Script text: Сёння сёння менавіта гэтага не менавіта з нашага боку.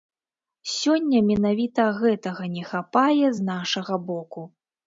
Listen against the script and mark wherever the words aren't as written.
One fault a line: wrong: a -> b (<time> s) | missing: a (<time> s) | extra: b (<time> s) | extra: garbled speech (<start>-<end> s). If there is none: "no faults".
missing: сёння (1.2 s)
wrong: менавіта -> хапае (2.7 s)